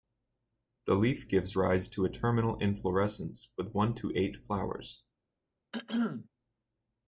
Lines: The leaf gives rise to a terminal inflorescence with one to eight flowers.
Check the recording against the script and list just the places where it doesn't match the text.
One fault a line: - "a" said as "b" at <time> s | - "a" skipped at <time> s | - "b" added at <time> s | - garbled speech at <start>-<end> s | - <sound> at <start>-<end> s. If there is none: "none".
- throat clearing at 5.7-6.3 s